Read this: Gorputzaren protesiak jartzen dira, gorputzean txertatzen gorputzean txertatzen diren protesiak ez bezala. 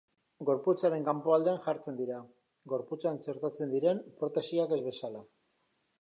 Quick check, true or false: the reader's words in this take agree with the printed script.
false